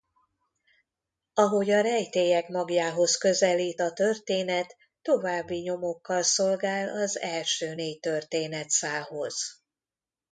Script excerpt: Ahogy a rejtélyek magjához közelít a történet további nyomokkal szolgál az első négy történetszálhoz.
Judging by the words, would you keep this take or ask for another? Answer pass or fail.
pass